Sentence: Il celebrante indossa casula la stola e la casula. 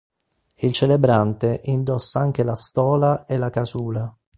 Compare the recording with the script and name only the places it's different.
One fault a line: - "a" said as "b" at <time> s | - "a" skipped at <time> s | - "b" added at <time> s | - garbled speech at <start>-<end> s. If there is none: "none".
- "casula" said as "anche" at 2.2 s